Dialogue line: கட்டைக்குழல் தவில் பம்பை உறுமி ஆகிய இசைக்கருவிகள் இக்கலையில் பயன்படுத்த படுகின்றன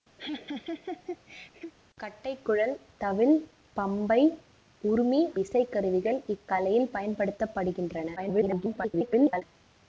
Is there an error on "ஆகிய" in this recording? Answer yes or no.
yes